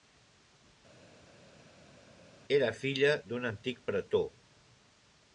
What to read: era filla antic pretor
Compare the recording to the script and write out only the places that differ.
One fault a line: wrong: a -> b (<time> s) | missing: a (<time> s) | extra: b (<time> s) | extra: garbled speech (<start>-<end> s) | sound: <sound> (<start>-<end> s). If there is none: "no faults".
extra: d'un (3.3 s)